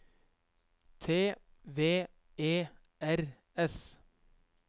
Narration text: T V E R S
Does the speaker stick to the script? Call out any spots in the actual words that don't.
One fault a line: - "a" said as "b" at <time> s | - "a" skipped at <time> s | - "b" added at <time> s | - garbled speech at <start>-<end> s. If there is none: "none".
none